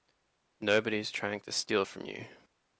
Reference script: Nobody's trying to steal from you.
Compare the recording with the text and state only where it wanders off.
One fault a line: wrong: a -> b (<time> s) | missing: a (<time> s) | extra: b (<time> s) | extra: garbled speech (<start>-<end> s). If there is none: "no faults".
no faults